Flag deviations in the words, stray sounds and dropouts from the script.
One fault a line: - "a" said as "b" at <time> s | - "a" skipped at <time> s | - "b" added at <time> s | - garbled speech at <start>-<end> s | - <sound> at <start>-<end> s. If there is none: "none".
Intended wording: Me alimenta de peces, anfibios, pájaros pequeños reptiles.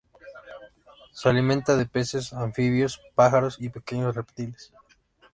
- "Me" said as "Se" at 1.1 s
- "y" added at 3.6 s